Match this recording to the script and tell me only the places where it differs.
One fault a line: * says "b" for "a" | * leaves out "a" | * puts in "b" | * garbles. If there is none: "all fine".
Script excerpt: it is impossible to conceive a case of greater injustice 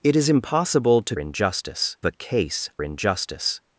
* says "injustice" for "conceive"
* leaves out "of greater"